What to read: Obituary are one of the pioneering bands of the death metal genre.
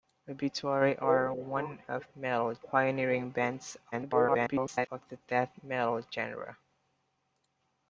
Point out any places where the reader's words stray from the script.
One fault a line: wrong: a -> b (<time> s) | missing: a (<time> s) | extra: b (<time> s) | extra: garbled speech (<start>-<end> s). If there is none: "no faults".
wrong: the -> metal (2.2 s)
extra: garbled speech (3.9-4.9 s)